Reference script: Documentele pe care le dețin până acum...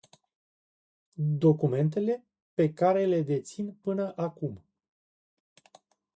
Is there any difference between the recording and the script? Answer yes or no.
no